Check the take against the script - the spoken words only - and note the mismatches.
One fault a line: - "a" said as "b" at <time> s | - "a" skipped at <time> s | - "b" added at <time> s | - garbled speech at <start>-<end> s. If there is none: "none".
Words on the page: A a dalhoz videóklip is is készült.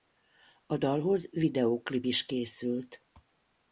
- "a" skipped at 0.8 s
- "is" skipped at 2.3 s